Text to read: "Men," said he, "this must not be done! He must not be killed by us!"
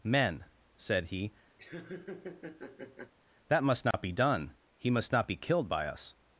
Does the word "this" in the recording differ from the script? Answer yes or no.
yes